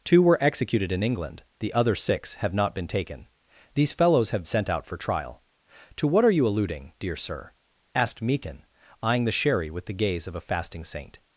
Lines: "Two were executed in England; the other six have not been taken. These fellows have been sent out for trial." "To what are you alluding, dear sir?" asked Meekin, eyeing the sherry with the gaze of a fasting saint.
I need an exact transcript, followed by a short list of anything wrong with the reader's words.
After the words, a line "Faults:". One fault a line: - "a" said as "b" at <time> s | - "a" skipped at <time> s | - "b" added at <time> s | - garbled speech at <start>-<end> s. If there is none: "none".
"Two were executed in England; the other six have not been taken. These fellows have sent out for trial." "To what are you alluding, dear sir?" asked Meekin, eyeing the sherry with the gaze of a fasting saint.
Faults:
- "been" skipped at 4.4 s